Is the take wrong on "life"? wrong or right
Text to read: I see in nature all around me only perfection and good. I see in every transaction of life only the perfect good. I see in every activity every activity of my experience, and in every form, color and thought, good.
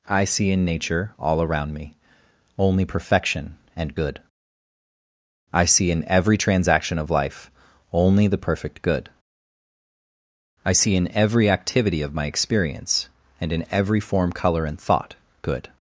right